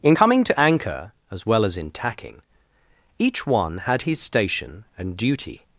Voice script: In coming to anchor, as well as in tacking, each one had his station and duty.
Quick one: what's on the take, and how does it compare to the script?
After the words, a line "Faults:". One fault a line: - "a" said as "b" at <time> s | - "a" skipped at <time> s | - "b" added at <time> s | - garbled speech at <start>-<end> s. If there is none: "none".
In coming to anchor, as well as in tacking, each one had his station and duty.
Faults:
none